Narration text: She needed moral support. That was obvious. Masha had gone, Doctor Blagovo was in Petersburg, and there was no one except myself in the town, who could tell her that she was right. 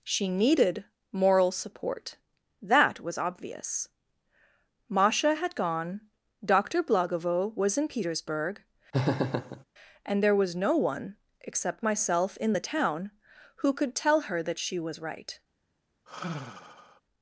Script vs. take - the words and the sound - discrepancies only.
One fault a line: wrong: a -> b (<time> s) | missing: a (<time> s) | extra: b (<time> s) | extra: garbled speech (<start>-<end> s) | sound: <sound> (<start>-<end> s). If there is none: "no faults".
sound: laugh (8.9-9.6 s)
sound: sigh (16.1-17.0 s)